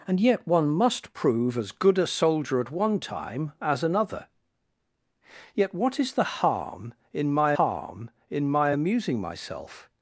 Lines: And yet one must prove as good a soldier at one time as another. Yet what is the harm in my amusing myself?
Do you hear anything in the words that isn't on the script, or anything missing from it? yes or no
yes